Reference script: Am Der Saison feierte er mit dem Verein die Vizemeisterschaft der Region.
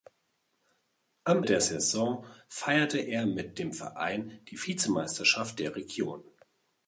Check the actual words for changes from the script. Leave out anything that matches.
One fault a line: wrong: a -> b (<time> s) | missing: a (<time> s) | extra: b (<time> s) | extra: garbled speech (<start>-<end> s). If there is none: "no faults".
no faults